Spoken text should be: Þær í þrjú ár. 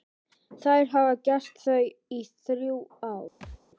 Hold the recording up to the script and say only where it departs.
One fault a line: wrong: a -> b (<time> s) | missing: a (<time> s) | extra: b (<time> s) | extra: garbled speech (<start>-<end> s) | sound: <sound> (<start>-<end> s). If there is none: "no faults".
extra: hafa gert það (0.9 s)
sound: thud (3.4-3.6 s)